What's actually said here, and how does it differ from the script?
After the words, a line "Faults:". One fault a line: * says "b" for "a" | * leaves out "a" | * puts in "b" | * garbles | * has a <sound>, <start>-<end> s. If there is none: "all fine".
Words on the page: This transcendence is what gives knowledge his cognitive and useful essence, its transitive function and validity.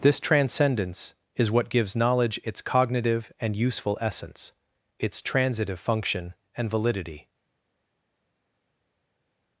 This transcendence is what gives knowledge its cognitive and useful essence, its transitive function and validity.
Faults:
* says "its" for "his"